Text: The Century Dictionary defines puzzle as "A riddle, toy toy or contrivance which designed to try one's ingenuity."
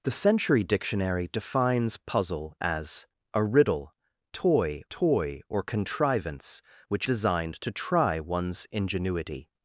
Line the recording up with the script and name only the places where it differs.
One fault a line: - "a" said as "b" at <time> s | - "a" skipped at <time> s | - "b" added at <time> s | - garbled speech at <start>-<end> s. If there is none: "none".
none